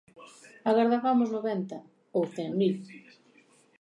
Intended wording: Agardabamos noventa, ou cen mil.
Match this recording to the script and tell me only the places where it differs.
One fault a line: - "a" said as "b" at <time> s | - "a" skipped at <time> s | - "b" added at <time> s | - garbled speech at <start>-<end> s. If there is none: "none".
none